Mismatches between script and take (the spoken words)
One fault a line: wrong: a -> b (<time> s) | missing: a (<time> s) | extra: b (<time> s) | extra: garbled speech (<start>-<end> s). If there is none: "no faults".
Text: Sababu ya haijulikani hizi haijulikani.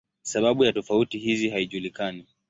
wrong: haijulikani -> tofauti (0.7 s)